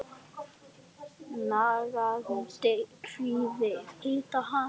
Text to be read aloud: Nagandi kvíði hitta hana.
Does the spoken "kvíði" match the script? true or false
true